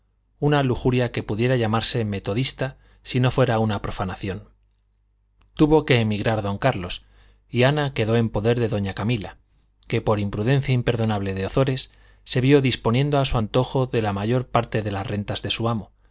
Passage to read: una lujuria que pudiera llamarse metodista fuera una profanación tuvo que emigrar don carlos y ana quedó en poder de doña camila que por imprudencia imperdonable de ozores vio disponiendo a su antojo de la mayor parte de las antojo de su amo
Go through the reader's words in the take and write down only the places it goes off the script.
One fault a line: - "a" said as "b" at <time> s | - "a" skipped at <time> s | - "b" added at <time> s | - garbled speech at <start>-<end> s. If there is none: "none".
- "si no" added at 3.0 s
- "se" added at 12.2 s
- "antojo" said as "rentas" at 15.1 s